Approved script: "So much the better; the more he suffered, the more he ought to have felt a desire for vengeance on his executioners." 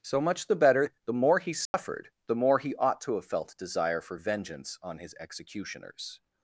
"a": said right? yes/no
no